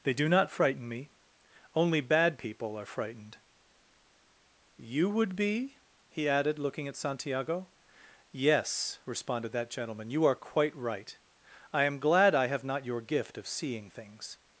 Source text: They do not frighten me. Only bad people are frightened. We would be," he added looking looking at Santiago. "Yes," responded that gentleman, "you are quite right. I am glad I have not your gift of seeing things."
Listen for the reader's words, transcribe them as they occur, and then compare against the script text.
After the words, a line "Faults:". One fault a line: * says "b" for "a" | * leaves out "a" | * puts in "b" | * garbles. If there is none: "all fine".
They do not frighten me. Only bad people are frightened. You would be," he added looking at Santiago. "Yes," responded that gentleman, "you are quite right. I am glad I have not your gift of seeing things."
Faults:
* says "You" for "We"
* leaves out "looking"